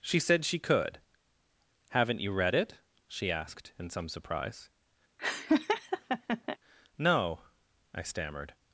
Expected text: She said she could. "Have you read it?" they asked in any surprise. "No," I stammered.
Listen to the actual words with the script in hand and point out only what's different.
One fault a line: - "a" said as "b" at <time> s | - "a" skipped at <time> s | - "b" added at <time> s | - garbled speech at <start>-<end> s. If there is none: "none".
- "Have" said as "Haven't" at 1.9 s
- "they" said as "she" at 3.1 s
- "any" said as "some" at 3.9 s